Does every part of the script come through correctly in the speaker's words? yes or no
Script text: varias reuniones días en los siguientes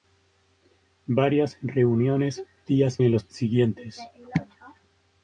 yes